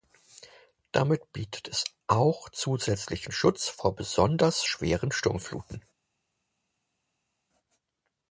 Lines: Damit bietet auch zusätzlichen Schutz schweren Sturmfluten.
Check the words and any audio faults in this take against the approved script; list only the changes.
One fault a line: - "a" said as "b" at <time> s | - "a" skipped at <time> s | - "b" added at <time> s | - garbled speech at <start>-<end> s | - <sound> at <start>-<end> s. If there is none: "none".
- "es" added at 1.7 s
- "vor besonders" added at 3.7 s